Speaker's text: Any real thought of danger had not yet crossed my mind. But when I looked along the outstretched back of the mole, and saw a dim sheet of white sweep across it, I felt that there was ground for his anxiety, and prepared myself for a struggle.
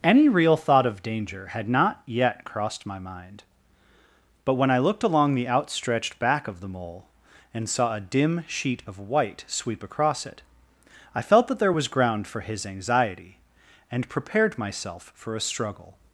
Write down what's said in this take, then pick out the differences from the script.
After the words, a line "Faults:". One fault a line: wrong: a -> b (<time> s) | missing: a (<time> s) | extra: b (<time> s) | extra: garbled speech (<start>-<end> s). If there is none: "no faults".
Any real thought of danger had not yet crossed my mind. But when I looked along the outstretched back of the mole, and saw a dim sheet of white sweep across it, I felt that there was ground for his anxiety, and prepared myself for a struggle.
Faults:
no faults